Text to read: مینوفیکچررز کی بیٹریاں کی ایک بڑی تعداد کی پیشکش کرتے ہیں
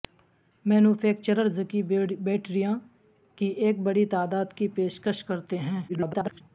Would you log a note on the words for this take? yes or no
yes